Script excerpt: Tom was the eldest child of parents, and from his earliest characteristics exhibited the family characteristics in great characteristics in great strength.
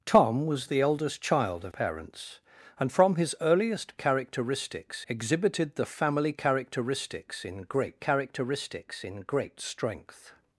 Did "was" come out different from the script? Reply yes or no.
no